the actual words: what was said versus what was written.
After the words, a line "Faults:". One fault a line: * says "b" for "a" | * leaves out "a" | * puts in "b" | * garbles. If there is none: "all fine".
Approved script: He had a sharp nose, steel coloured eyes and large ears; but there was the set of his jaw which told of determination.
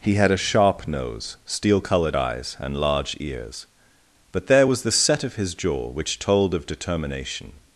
He had a sharp nose, steel coloured eyes and large ears; but there was the set of his jaw which told of determination.
Faults:
all fine